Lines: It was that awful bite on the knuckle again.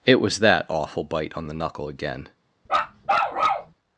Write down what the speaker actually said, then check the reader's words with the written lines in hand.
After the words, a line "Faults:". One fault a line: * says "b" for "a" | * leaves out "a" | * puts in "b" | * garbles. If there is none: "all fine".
It was that awful bite on the knuckle again.
Faults:
all fine